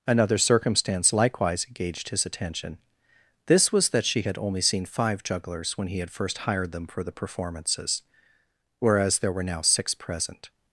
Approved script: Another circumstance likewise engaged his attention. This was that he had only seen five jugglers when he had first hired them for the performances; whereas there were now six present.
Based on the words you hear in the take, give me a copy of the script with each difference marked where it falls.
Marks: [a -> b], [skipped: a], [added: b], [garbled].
Another circumstance likewise engaged his attention. This was that [he -> she] had only seen five jugglers when he had first hired them for the performances; whereas there were now six present.